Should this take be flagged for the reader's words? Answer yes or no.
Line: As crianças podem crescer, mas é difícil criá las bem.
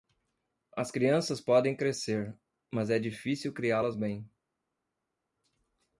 no